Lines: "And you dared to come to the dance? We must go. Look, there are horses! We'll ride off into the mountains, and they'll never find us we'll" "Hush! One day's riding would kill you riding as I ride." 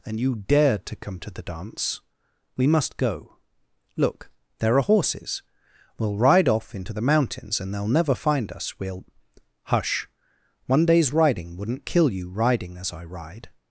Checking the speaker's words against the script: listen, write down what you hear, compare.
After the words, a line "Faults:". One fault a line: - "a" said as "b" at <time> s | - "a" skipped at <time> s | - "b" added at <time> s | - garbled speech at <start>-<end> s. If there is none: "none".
"And you dared to come to the dance? We must go. Look, there are horses! We'll ride off into the mountains, and they'll never find us we'll" "Hush! One day's riding wouldn't kill you riding as I ride."
Faults:
- "would" said as "wouldn't" at 11.6 s